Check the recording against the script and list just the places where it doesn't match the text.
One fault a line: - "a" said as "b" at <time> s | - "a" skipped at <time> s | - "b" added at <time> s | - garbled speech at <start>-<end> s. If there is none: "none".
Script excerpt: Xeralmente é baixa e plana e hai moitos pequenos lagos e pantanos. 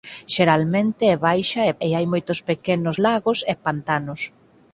- "plana" skipped at 1.7 s